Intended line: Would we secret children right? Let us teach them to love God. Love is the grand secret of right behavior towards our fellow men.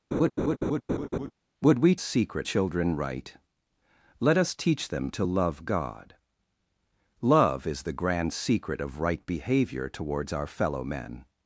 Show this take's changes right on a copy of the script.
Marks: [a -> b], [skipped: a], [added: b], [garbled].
Would we secret children right? Let us teach them to love God. Love is the grand secret of right behavior towards our fellow men.